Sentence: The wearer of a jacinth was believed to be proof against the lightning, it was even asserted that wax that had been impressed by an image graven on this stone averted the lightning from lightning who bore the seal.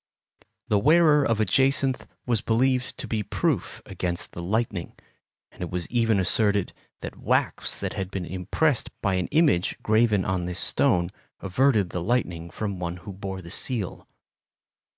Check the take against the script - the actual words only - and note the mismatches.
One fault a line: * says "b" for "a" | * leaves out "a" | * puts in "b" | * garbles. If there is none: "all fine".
* puts in "and"
* says "one" for "lightning"